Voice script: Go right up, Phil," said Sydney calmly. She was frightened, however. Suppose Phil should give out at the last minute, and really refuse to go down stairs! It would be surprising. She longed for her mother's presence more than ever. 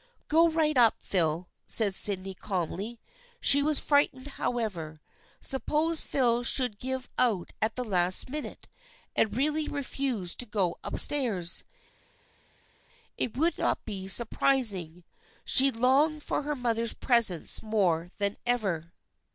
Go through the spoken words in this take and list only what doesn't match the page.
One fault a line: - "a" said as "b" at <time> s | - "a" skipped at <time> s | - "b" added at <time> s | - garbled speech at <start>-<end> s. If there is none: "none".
- "down" said as "up" at 10.8 s
- "not" added at 13.6 s